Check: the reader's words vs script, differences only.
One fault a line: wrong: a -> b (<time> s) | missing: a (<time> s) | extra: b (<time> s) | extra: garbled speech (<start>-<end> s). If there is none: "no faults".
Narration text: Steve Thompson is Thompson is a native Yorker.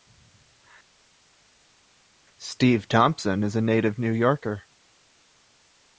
missing: Thompson is (3.6 s)
extra: New (4.0 s)